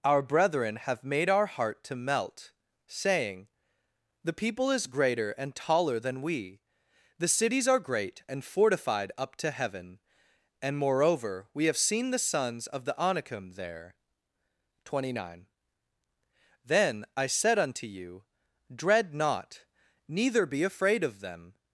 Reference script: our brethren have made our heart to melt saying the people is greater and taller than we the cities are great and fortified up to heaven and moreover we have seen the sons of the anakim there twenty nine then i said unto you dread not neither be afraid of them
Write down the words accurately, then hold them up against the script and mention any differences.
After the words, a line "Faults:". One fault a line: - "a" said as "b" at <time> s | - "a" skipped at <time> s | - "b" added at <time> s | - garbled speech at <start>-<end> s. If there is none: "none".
our brethren have made our heart to melt saying the people is greater and taller than we the cities are great and fortified up to heaven and moreover we have seen the sons of the anakim there twenty nine then i said unto you dread not neither be afraid of them
Faults:
none